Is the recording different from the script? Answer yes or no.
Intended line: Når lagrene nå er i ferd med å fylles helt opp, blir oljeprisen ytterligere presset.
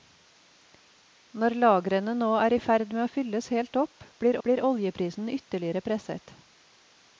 yes